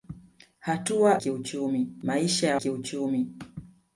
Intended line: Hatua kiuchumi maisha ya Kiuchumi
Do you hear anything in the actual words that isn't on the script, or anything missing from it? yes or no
no